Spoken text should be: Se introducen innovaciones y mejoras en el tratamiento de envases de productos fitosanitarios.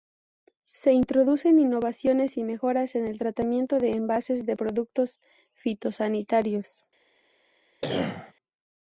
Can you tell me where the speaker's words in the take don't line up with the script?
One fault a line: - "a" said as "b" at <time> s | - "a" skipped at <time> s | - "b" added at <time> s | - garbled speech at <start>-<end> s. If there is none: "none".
none